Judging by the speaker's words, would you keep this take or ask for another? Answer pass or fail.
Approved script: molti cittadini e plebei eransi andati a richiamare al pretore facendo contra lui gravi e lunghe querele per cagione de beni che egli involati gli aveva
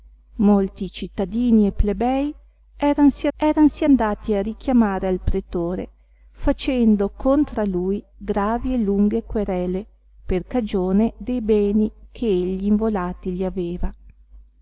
fail